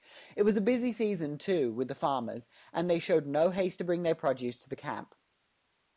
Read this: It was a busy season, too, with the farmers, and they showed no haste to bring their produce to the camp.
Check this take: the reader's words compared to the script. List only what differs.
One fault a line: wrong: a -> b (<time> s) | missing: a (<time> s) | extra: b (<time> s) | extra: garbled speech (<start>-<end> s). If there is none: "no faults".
no faults